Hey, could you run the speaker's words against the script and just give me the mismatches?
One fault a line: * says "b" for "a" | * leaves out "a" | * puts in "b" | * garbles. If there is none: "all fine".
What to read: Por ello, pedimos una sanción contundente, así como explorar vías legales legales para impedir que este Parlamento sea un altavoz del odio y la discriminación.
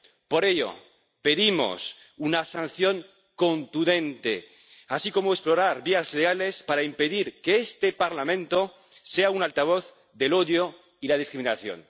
* leaves out "legales"